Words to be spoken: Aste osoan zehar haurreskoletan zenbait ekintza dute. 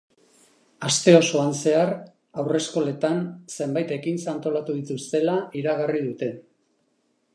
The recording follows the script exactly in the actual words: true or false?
false